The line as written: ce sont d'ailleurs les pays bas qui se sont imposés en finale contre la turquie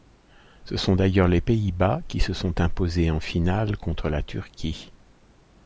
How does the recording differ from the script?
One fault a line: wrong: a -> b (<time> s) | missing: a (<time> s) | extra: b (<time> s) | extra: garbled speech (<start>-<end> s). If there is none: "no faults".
no faults